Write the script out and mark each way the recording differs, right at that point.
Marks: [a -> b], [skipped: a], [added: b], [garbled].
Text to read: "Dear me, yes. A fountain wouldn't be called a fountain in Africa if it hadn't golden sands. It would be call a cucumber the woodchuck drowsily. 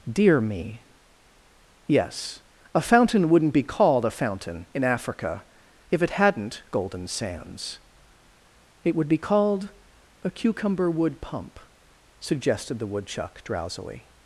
"Dear me, yes. A fountain wouldn't be called a fountain in Africa if it hadn't golden sands. It would be [call -> called] a cucumber [added: wood pump suggested] the woodchuck drowsily.